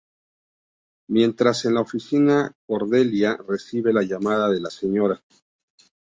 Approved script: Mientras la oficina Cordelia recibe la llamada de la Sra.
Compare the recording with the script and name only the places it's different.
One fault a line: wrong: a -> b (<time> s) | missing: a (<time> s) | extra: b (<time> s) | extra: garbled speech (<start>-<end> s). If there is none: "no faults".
extra: en (1.6 s)